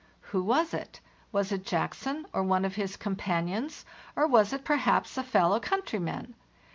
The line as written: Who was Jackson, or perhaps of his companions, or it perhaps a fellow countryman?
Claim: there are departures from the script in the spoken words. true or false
true